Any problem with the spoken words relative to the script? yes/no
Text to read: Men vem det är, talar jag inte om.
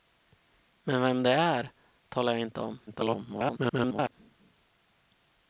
yes